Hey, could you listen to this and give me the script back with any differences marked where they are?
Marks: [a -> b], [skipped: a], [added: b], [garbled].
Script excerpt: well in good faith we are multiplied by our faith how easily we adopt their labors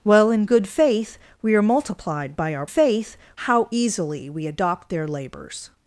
well in good faith we are multiplied by our faith how easily we adopt their labors